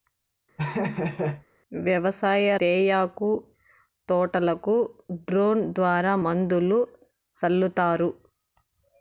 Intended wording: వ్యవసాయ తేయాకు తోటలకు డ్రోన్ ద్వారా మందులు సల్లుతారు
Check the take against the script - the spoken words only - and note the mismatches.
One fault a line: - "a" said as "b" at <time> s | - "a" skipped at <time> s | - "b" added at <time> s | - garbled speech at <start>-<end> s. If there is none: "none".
none